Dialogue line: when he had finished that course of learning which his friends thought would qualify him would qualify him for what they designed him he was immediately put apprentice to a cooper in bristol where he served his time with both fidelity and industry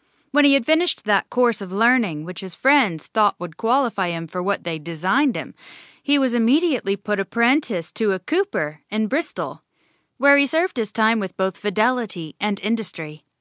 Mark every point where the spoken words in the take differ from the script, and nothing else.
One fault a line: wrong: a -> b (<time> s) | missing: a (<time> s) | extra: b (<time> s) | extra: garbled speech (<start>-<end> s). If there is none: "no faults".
missing: would qualify him (4.3 s)